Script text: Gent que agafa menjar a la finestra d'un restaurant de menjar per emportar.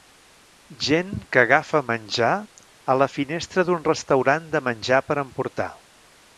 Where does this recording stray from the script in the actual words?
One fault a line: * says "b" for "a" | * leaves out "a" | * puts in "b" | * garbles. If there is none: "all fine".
all fine